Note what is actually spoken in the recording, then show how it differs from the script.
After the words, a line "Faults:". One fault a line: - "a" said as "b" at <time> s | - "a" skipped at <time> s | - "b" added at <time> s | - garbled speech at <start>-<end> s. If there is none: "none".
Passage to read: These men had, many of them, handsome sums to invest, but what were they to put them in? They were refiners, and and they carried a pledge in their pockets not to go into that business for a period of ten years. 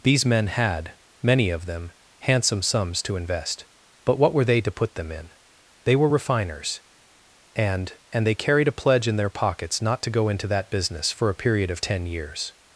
These men had, many of them, handsome sums to invest, but what were they to put them in? They were refiners, and and they carried a pledge in their pockets not to go into that business for a period of ten years.
Faults:
none